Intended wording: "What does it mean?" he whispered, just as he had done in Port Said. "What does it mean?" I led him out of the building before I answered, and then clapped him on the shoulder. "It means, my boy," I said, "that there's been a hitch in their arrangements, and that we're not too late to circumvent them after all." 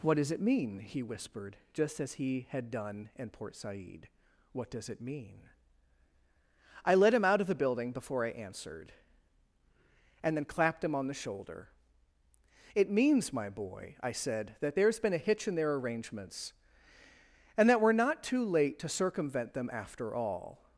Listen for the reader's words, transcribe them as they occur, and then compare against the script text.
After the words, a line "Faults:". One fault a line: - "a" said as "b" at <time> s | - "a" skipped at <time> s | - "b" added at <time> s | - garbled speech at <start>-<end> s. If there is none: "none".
"What does it mean?" he whispered, just as he had done in Port Said. "What does it mean?" I led him out of the building before I answered, and then clapped him on the shoulder. "It means, my boy," I said, "that there's been a hitch in their arrangements, and that we're not too late to circumvent them after all."
Faults:
none